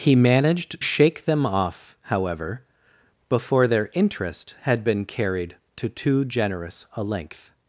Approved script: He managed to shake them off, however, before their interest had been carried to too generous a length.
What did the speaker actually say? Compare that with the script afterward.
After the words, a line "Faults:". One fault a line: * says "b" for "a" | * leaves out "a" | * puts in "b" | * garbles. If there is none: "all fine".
He managed shake them off, however, before their interest had been carried to too generous a length.
Faults:
* leaves out "to"